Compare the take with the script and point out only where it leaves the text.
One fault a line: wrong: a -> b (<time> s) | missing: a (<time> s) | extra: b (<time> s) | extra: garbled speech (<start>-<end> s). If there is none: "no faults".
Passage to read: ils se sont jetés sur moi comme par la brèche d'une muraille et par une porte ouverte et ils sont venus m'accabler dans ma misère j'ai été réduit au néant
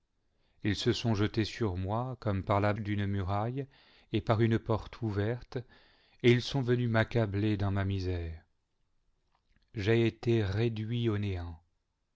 missing: brèche (2.7 s)